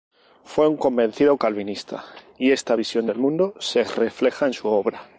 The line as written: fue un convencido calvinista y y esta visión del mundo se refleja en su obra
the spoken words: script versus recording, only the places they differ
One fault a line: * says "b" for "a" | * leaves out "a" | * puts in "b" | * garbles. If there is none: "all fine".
* leaves out "y"